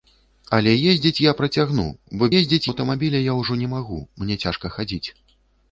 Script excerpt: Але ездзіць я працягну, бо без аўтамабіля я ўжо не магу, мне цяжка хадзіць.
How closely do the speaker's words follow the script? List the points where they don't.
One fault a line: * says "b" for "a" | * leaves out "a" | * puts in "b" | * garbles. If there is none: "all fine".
* says "ездзіць" for "без"